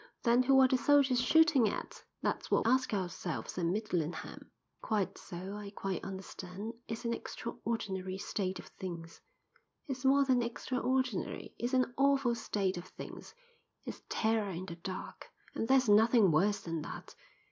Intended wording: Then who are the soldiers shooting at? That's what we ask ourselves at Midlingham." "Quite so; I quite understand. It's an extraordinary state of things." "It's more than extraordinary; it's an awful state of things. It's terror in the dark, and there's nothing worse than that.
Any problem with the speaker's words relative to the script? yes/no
yes